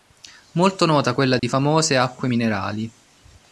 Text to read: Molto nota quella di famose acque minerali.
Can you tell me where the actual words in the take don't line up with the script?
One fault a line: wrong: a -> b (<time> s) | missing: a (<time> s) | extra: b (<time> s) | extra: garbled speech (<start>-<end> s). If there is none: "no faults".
no faults